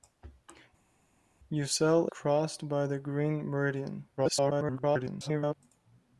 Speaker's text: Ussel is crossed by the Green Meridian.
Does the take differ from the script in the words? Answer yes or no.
yes